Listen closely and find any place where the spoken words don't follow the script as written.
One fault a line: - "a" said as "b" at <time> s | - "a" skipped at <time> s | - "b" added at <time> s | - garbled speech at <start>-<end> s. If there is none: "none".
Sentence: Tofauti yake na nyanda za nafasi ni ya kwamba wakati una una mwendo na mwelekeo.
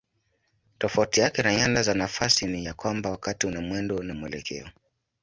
- "una" skipped at 3.6 s